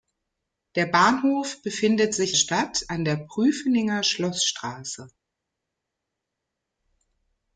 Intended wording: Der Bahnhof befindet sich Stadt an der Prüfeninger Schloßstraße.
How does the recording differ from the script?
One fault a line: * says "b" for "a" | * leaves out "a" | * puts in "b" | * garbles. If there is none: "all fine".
all fine